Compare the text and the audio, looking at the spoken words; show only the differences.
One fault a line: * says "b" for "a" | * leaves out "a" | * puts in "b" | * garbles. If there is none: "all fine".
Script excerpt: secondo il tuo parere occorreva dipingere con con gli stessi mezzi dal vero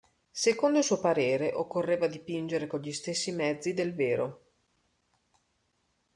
* says "suo" for "tuo"
* leaves out "con"
* says "del" for "dal"